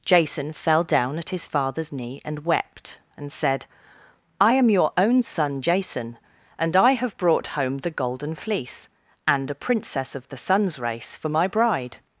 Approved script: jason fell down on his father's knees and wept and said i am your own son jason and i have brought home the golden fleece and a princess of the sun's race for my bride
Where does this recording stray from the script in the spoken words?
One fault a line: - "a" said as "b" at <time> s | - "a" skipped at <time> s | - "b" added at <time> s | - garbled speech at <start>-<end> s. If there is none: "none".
- "on" said as "at" at 1.2 s
- "knees" said as "knee" at 1.9 s